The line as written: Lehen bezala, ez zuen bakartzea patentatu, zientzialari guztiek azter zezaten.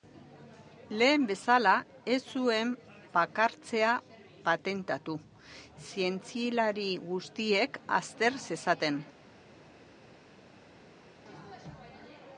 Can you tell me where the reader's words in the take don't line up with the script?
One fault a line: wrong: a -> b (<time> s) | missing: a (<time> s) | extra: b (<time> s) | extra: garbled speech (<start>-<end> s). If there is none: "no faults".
no faults